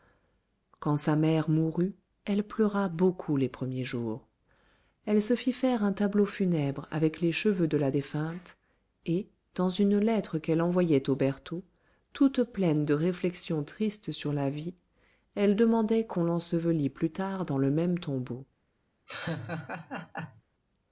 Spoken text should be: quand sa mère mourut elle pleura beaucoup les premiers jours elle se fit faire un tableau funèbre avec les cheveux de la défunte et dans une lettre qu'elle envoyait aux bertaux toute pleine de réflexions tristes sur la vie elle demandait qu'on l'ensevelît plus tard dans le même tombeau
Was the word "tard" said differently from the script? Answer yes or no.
no